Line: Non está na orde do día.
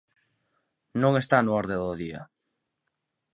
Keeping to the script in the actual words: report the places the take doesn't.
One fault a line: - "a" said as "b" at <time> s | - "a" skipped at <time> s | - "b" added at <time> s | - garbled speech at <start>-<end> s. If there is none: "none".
none